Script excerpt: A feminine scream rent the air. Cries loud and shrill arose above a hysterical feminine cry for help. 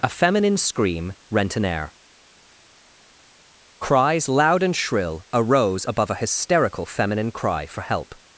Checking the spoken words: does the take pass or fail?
fail